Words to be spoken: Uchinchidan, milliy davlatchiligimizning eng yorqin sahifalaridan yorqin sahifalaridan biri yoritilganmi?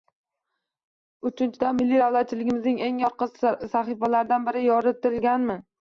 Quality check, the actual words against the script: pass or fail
fail